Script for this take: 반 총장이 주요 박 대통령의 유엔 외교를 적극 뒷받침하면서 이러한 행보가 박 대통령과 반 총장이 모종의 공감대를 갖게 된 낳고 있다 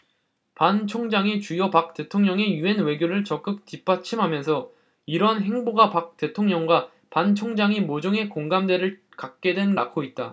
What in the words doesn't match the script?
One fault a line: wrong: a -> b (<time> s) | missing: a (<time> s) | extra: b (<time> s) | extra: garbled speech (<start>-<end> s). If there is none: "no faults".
no faults